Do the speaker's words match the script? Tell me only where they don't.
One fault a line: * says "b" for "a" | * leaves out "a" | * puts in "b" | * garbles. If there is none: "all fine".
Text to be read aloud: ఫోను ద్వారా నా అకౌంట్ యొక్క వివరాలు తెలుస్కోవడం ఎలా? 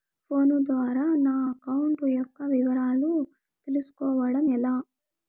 all fine